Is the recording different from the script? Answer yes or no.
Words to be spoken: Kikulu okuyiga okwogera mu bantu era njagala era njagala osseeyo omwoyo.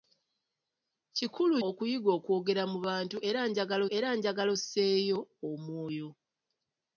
no